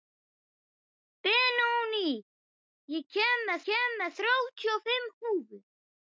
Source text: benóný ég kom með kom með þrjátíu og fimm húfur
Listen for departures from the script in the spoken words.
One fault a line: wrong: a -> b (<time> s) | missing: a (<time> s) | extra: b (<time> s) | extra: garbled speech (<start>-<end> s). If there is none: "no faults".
no faults